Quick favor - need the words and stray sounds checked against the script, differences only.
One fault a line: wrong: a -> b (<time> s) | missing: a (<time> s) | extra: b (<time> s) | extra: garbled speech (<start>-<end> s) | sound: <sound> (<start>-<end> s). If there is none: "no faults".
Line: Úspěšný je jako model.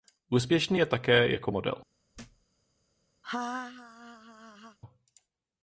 extra: také (0.9 s)
sound: thud (2.1-2.5 s)
sound: laugh (3.2-4.8 s)